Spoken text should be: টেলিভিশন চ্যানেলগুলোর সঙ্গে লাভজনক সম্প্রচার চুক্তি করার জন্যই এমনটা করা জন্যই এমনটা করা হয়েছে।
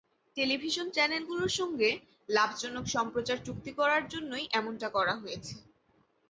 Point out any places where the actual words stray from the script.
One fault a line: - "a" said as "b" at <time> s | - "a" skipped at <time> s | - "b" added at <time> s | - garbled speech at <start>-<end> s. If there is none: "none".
- "জন্যই এমনটা করা" skipped at 5.1 s